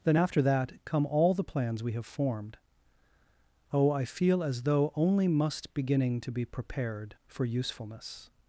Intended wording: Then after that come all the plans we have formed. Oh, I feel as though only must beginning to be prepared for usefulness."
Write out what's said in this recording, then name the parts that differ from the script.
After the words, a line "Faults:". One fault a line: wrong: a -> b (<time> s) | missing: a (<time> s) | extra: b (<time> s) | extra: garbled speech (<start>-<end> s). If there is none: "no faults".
Then after that come all the plans we have formed. Oh, I feel as though only must beginning to be prepared for usefulness."
Faults:
no faults